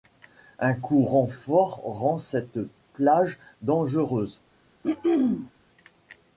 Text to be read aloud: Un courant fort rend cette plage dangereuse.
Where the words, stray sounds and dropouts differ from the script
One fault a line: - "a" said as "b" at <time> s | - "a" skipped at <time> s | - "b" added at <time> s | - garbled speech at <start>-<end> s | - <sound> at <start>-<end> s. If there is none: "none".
- throat clearing at 4.8-5.5 s